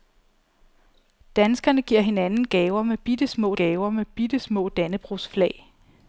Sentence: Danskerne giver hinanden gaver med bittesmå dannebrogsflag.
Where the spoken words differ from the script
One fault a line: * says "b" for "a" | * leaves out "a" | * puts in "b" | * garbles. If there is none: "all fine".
* puts in "gaver med bittesmå"